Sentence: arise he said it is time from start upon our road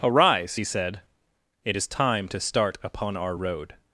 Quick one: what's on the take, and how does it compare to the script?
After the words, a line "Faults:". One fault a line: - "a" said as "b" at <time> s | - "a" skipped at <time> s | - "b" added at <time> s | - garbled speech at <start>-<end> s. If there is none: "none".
arise he said it is time to start upon our road
Faults:
- "from" said as "to" at 2.3 s